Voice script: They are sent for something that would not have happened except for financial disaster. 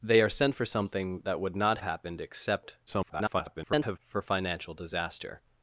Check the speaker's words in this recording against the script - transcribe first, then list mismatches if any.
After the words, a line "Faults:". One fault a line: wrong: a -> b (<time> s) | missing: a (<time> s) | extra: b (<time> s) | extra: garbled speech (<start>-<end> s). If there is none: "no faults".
They are sent for something that would not happened except [garbled] for financial disaster.
Faults:
missing: have (1.8 s)
extra: garbled speech (2.9-4.0 s)